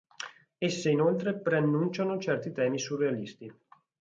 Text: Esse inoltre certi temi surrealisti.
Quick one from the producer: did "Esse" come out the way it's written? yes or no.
yes